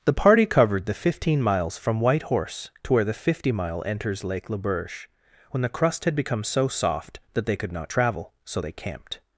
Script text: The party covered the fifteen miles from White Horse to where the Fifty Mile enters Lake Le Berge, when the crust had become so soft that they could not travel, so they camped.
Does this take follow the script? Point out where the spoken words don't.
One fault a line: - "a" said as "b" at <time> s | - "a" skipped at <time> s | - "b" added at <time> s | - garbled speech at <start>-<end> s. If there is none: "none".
none